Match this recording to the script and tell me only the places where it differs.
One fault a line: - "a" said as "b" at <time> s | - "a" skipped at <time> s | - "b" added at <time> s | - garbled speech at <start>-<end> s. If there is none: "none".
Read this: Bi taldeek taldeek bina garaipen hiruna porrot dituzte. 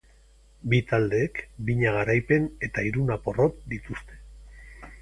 - "taldeek" skipped at 1.4 s
- "eta" added at 2.7 s